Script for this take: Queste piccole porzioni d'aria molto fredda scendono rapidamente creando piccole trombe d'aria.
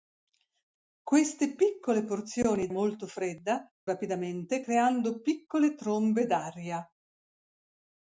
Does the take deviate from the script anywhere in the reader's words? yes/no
yes